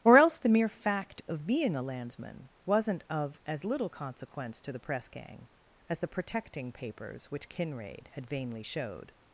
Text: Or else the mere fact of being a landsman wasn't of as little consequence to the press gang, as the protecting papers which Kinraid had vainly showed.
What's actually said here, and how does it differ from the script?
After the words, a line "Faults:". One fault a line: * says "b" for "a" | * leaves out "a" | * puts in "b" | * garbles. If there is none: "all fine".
Or else the mere fact of being a landsman wasn't of as little consequence to the press gang, as the protecting papers which Kinraid had vainly showed.
Faults:
all fine